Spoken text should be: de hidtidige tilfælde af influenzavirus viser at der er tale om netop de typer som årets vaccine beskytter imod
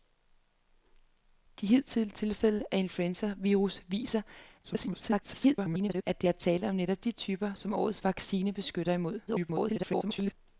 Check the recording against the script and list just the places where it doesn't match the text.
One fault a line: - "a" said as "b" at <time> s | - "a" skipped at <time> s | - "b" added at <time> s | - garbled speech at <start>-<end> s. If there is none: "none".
- garbled speech at 4.6-6.0 s
- garbled speech at 9.3-10.3 s